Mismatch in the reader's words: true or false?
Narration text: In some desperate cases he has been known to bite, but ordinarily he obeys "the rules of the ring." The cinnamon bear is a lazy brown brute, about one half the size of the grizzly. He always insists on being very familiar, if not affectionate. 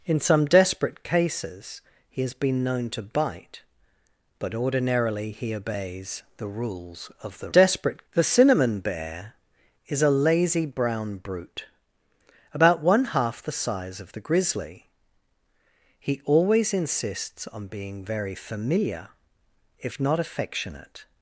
true